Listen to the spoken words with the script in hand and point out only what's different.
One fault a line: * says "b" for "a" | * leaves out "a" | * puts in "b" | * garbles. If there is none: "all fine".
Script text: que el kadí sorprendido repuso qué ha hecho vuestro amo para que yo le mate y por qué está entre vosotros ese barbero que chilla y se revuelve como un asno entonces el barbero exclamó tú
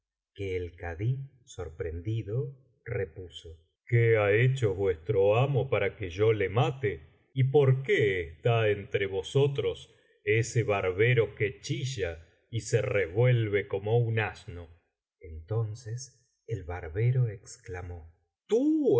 all fine